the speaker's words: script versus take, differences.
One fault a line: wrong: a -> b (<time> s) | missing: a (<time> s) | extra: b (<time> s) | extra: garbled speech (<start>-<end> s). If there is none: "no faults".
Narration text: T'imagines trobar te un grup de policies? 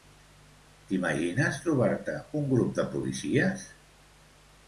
no faults